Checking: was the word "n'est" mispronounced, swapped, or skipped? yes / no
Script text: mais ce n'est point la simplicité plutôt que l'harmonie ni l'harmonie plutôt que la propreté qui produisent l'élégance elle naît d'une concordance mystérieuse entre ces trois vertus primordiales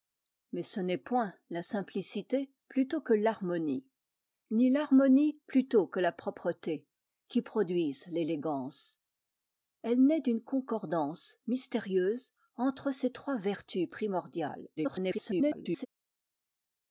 no